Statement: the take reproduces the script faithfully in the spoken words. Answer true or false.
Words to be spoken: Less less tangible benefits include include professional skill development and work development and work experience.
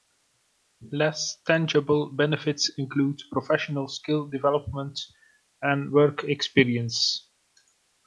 false